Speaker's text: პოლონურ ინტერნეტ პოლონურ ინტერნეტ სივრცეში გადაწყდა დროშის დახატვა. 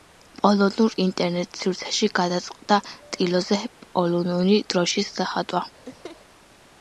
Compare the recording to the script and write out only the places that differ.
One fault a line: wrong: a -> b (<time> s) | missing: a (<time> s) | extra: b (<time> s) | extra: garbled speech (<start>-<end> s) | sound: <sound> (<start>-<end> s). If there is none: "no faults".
wrong: პოლონურ ინტერნეტ სივრცეში გადაწყდა -> სივრცეში გადაწყდა ტილოზე პოლონური (1.6 s)
sound: laugh (5.8-6.2 s)